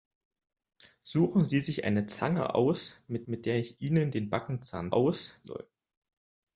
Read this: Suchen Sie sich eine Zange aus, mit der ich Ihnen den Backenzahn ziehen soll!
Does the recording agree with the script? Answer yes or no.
no